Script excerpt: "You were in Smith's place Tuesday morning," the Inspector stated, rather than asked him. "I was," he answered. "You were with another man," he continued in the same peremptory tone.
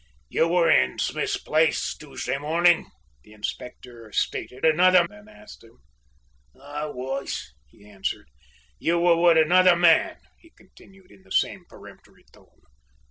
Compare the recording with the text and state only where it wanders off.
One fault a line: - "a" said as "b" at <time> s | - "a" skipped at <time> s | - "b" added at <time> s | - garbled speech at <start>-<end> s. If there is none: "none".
- "rather" said as "another" at 4.6 s